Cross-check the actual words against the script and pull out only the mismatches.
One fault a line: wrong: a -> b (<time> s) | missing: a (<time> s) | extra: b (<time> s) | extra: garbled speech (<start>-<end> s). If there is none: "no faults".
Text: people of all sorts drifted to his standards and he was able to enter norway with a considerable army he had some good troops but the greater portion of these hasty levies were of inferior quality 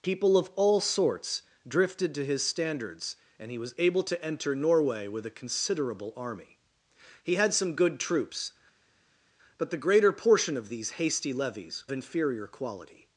missing: were of (11.8 s)